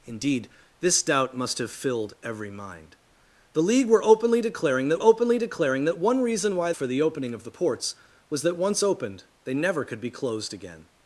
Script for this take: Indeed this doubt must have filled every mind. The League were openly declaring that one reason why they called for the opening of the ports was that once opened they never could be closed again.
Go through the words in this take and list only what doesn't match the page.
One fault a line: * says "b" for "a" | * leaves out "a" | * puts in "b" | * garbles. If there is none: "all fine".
* puts in "openly declaring that"
* leaves out "they called"